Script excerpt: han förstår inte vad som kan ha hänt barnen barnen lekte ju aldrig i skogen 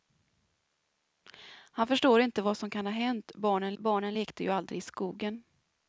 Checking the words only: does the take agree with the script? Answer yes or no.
yes